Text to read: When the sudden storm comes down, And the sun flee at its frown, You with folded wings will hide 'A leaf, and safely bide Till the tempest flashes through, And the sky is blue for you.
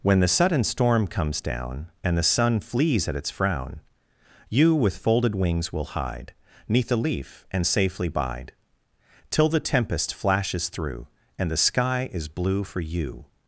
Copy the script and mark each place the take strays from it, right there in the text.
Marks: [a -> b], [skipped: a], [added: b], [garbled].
When the sudden storm comes down, And the sun [flee -> flees] at its frown, You with folded wings will hide [added: Neath] 'A leaf, and safely bide Till the tempest flashes through, And the sky is blue for you.